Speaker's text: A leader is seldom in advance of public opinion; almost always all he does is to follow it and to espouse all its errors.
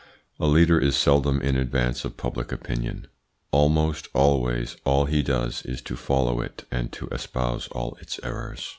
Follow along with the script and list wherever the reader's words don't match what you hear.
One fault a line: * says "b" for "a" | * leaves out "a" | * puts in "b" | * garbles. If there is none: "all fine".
all fine